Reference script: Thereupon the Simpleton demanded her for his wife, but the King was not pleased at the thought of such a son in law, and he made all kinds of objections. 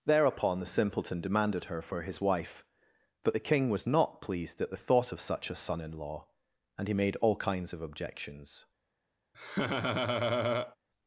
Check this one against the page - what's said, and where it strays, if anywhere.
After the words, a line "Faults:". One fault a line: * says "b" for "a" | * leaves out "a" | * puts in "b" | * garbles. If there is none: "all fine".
Thereupon the Simpleton demanded her for his wife, but the King was not pleased at the thought of such a son in law, and he made all kinds of objections.
Faults:
all fine